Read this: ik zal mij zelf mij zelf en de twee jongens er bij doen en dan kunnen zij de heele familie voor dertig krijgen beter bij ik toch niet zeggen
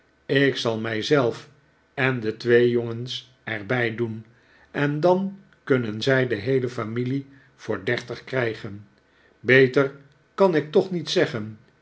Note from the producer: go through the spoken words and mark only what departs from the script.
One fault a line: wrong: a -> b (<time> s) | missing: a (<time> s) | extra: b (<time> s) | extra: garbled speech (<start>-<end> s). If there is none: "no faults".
missing: mij zelf (1.5 s)
wrong: bij -> kan (10.3 s)